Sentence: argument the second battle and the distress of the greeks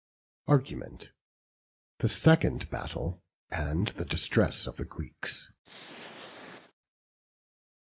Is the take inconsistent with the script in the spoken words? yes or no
no